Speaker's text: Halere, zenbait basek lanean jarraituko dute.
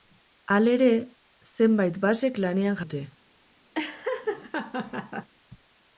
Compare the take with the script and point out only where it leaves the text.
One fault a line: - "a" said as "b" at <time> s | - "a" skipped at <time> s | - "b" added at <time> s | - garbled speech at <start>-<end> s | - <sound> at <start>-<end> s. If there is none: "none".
- "jarraituko" skipped at 2.8 s
- laugh at 3.7-5.3 s